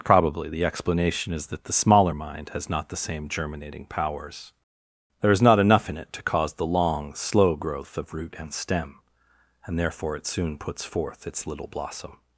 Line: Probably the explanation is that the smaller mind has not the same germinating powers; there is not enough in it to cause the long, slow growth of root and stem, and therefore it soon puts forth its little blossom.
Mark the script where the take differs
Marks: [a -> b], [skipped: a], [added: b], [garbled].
Probably the explanation is that the smaller mind has not the same germinating powers; there is not enough in it to cause the long, slow growth of root and stem, and therefore it soon puts forth its little blossom.